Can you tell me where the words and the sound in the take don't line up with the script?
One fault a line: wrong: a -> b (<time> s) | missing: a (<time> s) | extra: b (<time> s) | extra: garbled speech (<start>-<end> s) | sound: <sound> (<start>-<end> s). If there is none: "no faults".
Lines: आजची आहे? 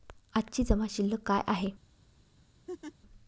extra: जमा शिल्लक काय (0.6 s)
sound: laugh (2.7-2.9 s)